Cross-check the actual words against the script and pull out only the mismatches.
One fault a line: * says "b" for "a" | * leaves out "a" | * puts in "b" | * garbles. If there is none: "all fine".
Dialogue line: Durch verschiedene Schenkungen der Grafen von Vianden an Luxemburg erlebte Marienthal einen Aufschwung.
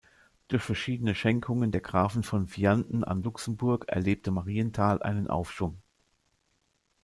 all fine